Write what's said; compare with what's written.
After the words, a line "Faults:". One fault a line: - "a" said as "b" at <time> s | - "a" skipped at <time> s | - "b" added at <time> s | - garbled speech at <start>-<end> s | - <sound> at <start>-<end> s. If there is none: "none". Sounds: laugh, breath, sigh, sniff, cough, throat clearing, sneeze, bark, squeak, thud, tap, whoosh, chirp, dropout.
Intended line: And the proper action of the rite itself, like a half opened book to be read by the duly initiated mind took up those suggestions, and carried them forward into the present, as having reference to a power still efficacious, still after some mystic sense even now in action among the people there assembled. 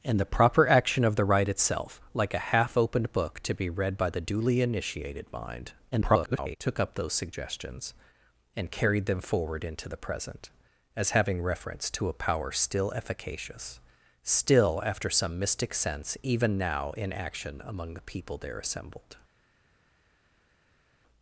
And the proper action of the rite itself, like a half opened book to be read by the duly initiated mind [garbled] took up those suggestions, and carried them forward into the present, as having reference to a power still efficacious, still after some mystic sense even now in action among the people there assembled.
Faults:
- garbled speech at 5.9-6.6 s